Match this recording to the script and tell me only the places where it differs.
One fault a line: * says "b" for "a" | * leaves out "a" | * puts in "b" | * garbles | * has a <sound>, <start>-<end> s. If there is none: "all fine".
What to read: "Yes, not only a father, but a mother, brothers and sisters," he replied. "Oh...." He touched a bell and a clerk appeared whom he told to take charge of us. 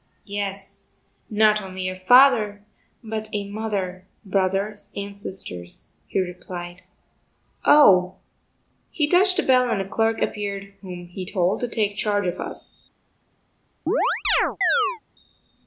* has a chirp, 13.9-15.0 s